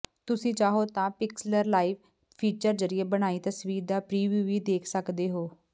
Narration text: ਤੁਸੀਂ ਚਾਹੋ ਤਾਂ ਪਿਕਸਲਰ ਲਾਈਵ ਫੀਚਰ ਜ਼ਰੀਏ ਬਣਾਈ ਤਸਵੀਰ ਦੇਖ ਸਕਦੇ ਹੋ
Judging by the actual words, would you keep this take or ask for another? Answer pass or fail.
fail